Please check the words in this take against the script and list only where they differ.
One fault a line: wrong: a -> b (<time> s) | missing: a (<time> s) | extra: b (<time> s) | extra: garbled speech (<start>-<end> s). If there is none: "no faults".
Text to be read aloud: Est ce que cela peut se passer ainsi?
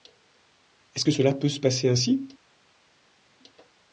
no faults